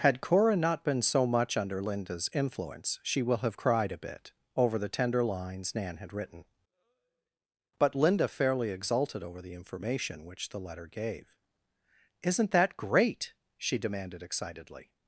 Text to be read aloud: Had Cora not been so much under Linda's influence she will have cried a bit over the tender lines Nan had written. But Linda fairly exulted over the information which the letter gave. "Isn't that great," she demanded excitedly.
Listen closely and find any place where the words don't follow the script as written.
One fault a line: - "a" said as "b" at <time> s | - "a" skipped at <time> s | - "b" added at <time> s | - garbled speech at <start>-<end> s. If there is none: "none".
none